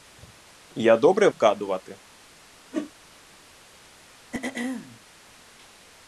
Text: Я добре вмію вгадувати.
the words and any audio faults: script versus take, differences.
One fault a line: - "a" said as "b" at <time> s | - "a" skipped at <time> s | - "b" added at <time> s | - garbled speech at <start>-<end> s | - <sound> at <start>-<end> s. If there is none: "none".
- "вмію" skipped at 1.3 s
- whoosh at 2.7-2.9 s
- throat clearing at 4.3-5.0 s